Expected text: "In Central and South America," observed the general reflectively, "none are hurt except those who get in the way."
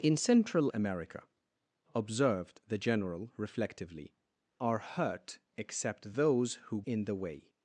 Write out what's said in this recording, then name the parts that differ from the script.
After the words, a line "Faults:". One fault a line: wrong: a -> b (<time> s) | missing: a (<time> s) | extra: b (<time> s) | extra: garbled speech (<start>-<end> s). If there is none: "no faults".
"In Central America," observed the general reflectively, "are hurt except those who in the way."
Faults:
missing: and South (0.7 s)
missing: none (4.1 s)
missing: get (6.8 s)